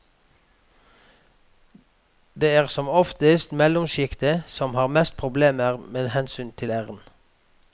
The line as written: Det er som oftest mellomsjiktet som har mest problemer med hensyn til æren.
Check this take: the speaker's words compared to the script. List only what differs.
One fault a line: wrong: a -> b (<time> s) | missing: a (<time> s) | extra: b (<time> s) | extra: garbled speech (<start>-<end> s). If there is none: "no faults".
no faults